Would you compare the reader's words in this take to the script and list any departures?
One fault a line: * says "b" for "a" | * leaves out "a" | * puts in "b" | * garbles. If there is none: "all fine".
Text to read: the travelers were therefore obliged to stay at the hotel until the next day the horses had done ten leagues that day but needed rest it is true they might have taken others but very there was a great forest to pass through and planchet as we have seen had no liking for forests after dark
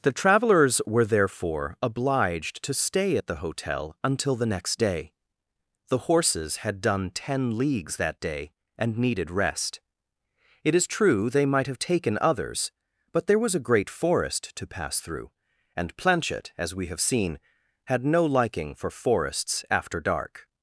* says "and" for "but"
* leaves out "very"